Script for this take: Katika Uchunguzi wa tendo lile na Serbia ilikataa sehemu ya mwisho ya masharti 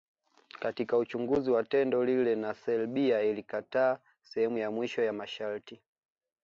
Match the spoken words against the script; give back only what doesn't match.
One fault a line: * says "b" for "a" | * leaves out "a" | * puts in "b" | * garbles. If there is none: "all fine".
all fine